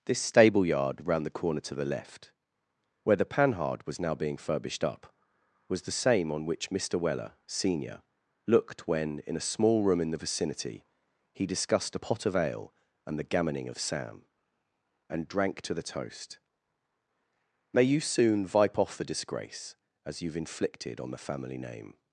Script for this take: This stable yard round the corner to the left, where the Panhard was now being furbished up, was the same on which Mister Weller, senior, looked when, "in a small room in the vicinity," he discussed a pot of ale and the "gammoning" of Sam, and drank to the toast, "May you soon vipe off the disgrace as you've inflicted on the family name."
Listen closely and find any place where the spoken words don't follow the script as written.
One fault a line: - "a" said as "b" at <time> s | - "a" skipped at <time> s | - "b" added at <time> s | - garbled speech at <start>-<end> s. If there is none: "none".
none